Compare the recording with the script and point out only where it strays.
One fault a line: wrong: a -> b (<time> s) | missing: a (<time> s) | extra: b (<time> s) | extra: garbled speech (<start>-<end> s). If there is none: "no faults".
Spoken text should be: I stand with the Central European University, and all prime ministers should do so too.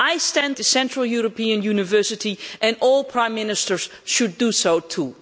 missing: with (0.6 s)